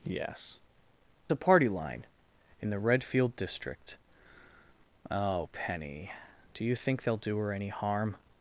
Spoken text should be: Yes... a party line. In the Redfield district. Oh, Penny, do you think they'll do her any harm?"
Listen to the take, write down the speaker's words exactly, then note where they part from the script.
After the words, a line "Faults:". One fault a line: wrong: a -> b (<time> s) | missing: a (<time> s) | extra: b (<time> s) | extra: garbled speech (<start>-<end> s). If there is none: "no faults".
Yes... a party line. In the Redfield district. Oh, Penny, do you think they'll do her any harm?"
Faults:
no faults